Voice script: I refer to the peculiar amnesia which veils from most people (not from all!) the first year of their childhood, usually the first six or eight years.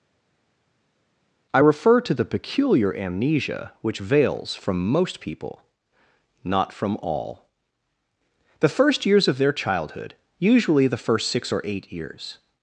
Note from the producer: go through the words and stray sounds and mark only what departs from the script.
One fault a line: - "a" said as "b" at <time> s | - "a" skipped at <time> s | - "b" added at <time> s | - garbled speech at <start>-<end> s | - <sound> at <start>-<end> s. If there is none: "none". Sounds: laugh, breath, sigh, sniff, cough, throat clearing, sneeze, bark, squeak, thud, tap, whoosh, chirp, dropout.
- "year" said as "years" at 9.0 s